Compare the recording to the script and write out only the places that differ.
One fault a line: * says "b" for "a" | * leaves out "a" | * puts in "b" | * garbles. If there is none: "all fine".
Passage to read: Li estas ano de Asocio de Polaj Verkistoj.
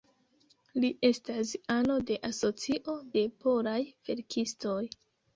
all fine